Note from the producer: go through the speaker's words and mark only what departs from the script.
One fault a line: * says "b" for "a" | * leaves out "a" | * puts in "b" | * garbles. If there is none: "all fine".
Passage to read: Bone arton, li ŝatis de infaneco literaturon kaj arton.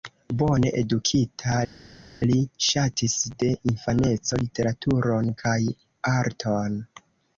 * says "edukita" for "arton"